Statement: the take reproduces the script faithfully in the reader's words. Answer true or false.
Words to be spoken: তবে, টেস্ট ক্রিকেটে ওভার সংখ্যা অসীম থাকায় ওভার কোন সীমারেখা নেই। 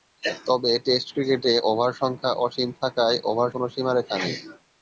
true